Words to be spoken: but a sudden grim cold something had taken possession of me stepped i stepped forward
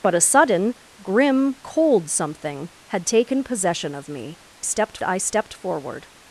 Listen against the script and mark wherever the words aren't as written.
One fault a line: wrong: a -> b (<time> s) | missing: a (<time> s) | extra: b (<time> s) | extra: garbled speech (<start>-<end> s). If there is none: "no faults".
no faults